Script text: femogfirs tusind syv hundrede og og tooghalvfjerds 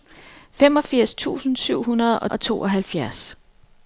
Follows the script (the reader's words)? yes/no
yes